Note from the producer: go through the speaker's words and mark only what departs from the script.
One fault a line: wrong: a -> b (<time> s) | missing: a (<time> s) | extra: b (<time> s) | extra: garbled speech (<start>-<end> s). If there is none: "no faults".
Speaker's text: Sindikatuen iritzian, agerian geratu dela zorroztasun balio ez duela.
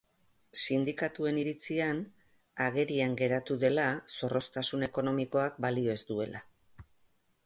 extra: ekonomikoak (4.9 s)